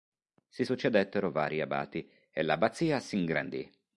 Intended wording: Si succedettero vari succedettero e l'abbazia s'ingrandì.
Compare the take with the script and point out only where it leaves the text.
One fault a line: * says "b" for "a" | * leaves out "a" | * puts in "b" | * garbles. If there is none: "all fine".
* says "abati" for "succedettero"